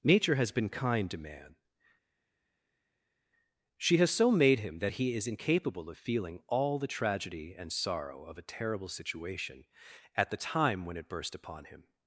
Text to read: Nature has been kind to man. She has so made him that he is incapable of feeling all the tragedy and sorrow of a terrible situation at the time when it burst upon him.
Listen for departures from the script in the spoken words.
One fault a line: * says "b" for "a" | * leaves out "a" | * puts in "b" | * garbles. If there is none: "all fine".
all fine